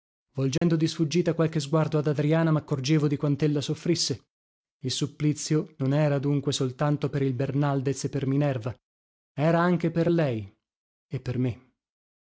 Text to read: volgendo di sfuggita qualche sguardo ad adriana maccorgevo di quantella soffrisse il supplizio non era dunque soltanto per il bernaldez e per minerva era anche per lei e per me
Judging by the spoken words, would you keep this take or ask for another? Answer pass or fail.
pass